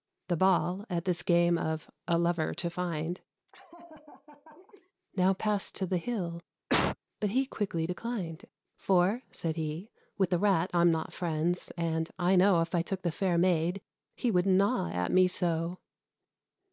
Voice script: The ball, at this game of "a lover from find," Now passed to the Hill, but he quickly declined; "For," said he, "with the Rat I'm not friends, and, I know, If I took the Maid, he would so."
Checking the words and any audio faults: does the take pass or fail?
fail